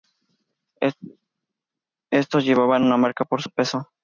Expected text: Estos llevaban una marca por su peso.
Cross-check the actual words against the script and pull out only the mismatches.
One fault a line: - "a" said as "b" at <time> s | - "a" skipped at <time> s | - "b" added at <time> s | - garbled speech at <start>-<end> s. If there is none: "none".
none